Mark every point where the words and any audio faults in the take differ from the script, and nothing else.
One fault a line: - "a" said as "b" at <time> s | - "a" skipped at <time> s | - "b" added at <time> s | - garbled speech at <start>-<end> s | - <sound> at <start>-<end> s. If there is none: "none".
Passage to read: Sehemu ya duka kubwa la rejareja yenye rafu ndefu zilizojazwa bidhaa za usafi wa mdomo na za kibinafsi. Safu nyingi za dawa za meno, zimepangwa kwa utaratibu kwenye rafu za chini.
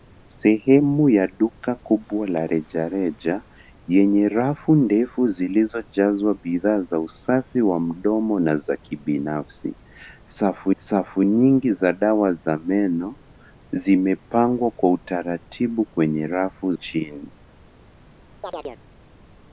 - "safu" added at 10.8 s
- "za" skipped at 16.7 s
- chirp at 18.4-18.8 s